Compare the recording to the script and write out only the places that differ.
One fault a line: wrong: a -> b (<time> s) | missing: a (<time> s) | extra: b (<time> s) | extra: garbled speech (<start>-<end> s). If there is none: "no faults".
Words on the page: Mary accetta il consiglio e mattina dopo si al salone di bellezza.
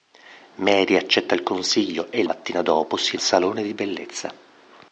no faults